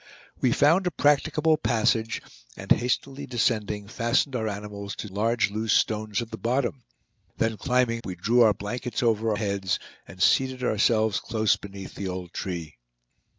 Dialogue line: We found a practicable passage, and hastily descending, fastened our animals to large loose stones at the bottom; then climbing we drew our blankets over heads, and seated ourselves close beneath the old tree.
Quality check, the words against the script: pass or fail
pass